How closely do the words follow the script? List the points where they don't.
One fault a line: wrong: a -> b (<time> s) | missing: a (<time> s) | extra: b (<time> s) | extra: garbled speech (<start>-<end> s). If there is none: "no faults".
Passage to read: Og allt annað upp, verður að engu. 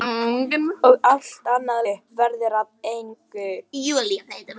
no faults